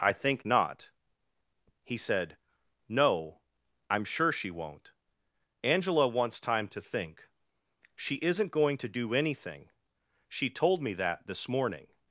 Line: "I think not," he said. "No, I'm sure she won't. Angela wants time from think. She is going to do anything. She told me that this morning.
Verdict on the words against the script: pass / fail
fail